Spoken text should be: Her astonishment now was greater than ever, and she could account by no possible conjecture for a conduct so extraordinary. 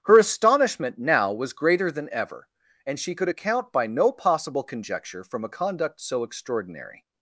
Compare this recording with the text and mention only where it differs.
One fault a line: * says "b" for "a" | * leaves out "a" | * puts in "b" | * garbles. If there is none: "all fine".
* says "from" for "for"